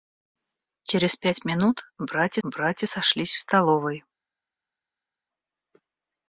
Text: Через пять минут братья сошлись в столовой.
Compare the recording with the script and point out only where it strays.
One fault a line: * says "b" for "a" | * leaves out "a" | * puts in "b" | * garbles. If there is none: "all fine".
* puts in "братья"